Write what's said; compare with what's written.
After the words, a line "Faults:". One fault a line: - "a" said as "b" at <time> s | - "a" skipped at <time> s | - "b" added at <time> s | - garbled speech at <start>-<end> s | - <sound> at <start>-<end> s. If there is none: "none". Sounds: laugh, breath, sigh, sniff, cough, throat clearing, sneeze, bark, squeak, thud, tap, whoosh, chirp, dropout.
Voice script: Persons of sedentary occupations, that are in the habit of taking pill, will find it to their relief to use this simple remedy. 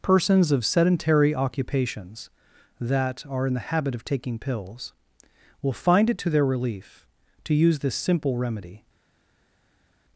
Persons of sedentary occupations, that are in the habit of taking pills, will find it to their relief to use this simple remedy.
Faults:
- "pill" said as "pills" at 4.4 s